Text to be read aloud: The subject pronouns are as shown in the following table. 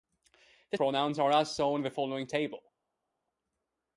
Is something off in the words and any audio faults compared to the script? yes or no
yes